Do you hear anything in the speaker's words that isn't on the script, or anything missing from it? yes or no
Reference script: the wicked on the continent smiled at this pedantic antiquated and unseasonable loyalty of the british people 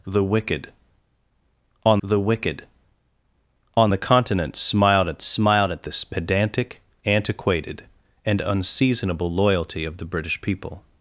yes